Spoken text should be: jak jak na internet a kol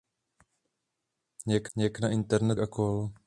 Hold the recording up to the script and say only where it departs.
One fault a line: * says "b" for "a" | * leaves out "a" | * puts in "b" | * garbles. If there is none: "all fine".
all fine